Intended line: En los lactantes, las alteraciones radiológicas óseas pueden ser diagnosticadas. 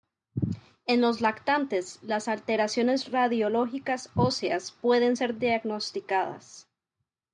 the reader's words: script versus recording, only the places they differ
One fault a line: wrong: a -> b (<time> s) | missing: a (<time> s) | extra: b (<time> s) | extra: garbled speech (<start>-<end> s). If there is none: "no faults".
no faults